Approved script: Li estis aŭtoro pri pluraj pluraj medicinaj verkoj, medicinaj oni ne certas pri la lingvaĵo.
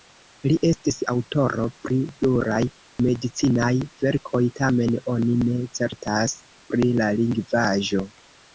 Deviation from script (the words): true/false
true